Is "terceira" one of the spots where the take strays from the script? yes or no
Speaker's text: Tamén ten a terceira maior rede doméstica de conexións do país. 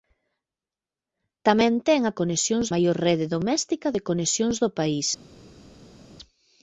yes